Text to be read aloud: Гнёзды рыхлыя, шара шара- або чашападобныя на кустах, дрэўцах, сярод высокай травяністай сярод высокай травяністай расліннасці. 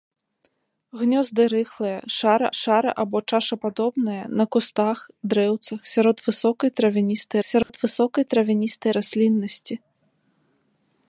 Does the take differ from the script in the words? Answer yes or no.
no